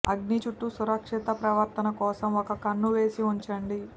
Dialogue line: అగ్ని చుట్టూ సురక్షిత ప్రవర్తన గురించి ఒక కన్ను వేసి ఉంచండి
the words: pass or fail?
fail